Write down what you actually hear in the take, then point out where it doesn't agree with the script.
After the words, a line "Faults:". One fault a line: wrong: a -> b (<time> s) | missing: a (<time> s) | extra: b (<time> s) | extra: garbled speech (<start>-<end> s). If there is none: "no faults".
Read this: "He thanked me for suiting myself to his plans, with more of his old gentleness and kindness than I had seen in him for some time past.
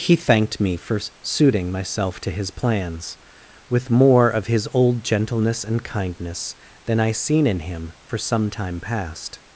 "He thanked me for suiting myself to his plans, with more of his old gentleness and kindness than I seen in him for some time past.
Faults:
missing: had (7.1 s)